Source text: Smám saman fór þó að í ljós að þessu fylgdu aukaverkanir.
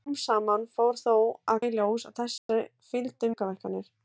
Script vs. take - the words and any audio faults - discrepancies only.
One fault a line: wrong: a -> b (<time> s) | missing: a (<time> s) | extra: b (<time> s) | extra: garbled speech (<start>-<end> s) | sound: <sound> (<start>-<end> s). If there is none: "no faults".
sound: dropout (2.4-2.5 s)